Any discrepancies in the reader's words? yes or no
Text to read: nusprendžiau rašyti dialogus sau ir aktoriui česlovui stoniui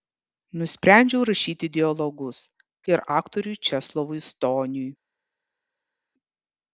yes